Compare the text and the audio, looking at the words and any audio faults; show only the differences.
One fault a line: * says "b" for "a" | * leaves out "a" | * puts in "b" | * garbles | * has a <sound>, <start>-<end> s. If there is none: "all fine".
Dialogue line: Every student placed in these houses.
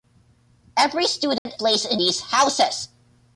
* has a dropout, 1.4-1.5 s